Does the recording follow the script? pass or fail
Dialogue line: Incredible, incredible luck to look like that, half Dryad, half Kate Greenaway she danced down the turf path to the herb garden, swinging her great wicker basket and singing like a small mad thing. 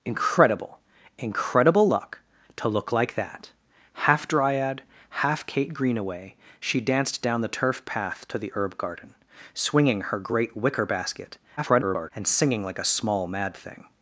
fail